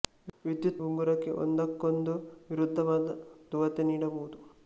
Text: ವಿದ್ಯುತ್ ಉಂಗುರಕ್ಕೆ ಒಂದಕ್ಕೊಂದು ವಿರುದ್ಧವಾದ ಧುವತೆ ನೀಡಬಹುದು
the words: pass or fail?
pass